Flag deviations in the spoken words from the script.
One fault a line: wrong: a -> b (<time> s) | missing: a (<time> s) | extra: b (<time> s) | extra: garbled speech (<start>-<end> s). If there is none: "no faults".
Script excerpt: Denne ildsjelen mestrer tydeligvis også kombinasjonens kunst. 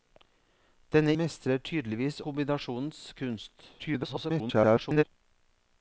missing: ildsjelen (1.1 s)
missing: også (2.2 s)
extra: garbled speech (3.8-5.0 s)